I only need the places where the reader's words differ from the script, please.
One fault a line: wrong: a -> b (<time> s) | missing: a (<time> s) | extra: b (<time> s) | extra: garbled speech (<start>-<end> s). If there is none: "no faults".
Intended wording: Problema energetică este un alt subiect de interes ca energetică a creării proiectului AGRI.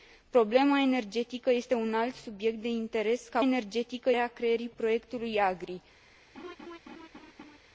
no faults